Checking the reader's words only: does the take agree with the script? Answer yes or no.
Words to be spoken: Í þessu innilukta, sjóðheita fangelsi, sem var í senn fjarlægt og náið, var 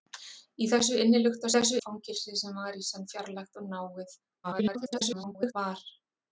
no